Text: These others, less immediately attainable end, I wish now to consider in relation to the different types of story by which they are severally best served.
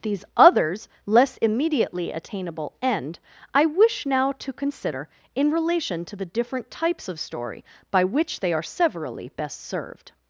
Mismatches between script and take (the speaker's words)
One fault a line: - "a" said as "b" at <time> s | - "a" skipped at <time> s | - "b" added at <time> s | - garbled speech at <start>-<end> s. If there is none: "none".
none